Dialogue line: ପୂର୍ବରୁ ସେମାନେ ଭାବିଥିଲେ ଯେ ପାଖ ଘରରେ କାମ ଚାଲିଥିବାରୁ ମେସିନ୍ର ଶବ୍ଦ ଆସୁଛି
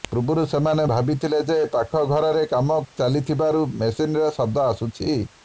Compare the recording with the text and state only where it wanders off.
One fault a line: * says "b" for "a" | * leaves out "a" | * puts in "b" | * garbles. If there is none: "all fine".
all fine